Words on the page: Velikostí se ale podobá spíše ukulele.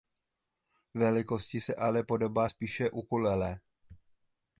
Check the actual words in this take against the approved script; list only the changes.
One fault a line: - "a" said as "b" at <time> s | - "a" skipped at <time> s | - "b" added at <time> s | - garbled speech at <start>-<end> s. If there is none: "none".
none